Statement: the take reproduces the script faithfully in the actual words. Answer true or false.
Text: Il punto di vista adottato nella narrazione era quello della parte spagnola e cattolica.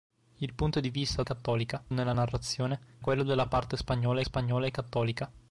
false